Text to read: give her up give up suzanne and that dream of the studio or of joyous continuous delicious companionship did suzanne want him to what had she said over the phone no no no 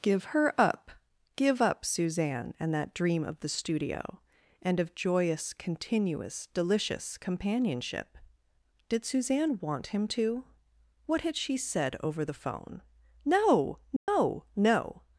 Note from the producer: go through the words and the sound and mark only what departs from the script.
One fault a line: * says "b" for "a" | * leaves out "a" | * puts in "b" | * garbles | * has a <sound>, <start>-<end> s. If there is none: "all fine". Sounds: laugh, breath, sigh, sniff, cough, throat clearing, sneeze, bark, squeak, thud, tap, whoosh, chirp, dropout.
* says "and" for "or"
* has a dropout, 14.0-14.1 s